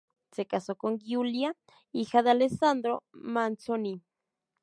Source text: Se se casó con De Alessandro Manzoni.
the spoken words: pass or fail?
fail